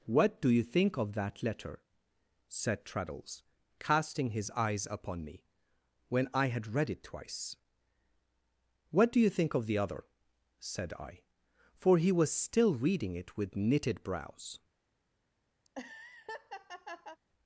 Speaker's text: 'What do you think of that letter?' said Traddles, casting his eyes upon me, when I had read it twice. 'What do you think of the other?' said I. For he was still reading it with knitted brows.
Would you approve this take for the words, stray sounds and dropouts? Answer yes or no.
no